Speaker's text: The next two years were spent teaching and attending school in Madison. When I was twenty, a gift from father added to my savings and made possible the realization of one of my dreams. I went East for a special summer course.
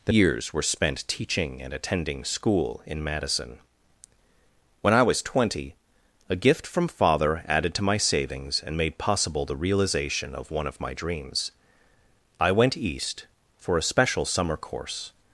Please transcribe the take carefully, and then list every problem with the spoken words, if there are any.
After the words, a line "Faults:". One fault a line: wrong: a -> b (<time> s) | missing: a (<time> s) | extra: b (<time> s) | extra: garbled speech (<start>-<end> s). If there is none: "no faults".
The years were spent teaching and attending school in Madison. When I was twenty, a gift from father added to my savings and made possible the realization of one of my dreams. I went East for a special summer course.
Faults:
missing: next two (0.1 s)